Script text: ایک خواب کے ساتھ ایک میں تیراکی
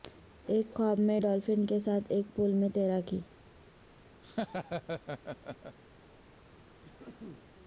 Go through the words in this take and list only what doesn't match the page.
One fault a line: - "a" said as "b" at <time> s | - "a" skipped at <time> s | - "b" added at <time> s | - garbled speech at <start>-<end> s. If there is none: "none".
- "میں ڈالفن" added at 1.0 s
- "پول" added at 2.4 s